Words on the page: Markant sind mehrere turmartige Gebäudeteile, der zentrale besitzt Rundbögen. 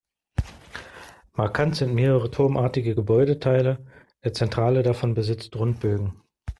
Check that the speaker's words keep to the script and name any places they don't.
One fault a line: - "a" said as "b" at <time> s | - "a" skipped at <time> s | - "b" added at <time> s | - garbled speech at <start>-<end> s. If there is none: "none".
- "davon" added at 4.8 s